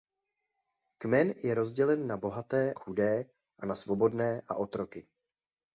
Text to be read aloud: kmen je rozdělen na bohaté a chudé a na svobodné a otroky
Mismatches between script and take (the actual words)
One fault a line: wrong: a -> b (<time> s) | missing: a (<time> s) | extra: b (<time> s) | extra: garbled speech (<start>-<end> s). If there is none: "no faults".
missing: a (2.7 s)